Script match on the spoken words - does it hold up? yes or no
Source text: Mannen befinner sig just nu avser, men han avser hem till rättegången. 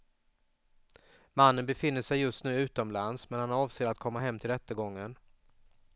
no